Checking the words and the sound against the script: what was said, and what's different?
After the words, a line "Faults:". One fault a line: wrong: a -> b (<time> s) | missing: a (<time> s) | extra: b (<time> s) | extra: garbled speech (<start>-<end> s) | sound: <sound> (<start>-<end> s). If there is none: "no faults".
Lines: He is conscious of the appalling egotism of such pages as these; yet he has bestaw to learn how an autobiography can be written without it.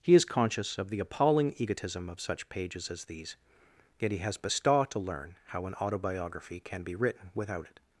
He is conscious of the appalling egotism of such pages as these; yet he has bestaw to learn how an autobiography can be written without it.
Faults:
no faults